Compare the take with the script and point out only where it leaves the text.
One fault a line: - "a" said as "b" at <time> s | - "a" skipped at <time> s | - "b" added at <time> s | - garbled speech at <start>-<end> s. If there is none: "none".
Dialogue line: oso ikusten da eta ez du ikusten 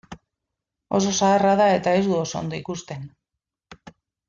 - "ikusten" said as "zaharra" at 1.2 s
- "oso ondo" added at 2.2 s